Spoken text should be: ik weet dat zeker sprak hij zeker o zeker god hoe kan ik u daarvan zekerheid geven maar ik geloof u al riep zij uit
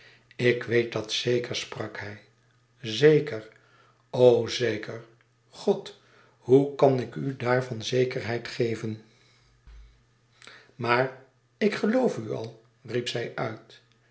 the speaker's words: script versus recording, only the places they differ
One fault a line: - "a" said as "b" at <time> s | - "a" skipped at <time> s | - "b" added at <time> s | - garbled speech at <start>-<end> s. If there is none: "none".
none